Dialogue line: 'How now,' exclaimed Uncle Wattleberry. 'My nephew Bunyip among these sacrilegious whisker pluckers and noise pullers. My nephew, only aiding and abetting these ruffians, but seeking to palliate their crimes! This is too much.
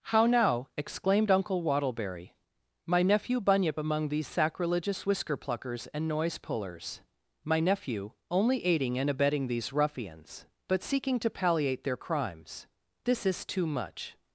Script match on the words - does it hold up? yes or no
yes